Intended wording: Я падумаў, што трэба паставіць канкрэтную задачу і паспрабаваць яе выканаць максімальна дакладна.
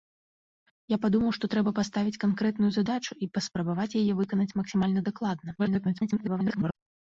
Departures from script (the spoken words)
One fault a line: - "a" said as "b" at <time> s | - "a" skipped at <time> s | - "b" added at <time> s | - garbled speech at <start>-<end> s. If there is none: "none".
- garbled speech at 5.6-6.8 s